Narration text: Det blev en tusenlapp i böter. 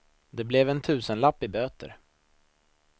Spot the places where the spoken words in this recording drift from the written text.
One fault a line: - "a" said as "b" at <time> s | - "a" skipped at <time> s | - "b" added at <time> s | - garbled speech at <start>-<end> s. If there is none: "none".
none